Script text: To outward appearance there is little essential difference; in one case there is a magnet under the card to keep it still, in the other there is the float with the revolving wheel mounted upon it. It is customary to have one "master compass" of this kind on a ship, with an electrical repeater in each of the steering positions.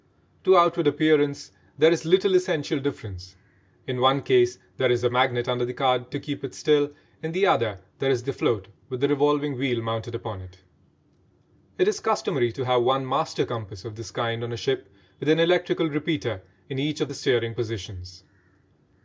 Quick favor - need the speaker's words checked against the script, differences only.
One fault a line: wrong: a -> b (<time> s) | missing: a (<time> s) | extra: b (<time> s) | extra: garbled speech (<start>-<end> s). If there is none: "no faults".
no faults